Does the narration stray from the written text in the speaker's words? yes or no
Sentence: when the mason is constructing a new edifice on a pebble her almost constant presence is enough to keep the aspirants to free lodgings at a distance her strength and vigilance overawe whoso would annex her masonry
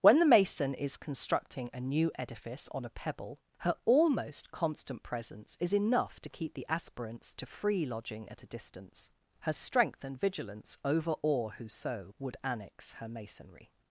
yes